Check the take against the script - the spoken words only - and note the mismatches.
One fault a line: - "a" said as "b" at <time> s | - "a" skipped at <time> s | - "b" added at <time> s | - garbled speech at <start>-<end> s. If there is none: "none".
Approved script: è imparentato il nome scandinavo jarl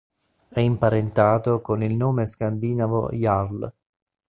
- "con" added at 1.6 s